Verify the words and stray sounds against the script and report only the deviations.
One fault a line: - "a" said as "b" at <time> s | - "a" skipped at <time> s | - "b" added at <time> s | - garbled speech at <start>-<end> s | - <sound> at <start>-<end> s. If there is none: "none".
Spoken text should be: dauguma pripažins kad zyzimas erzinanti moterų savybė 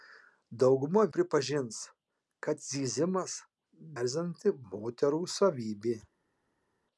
none